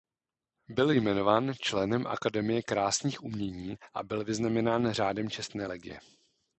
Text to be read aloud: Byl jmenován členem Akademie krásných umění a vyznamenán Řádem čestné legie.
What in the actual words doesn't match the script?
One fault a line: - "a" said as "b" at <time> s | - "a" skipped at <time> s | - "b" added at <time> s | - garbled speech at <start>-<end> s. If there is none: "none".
- "byl" added at 4.0 s